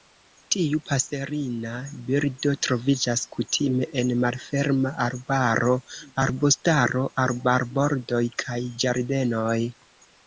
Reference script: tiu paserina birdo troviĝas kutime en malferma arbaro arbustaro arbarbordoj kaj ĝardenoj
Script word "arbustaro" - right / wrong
right